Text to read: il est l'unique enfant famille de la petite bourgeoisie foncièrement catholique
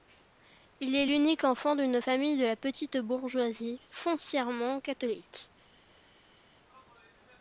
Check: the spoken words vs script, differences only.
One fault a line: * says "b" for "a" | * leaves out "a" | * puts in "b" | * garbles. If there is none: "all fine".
* puts in "d'une"